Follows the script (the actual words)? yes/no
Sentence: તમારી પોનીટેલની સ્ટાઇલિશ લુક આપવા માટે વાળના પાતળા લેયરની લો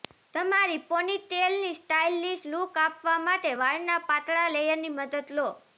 no